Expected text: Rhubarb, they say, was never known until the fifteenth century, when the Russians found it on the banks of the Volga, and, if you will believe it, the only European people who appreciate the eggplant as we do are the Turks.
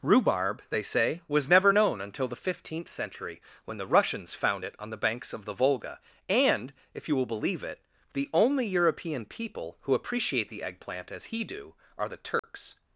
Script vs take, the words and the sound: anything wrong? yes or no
yes